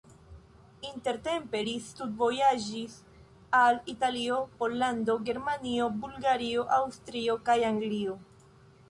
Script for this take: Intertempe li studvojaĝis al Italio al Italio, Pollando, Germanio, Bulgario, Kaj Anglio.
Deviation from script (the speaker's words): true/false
true